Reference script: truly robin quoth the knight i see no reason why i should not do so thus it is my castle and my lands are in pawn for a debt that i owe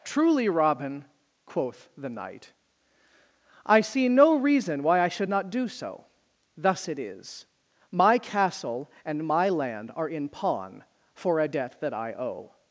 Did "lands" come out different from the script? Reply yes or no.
yes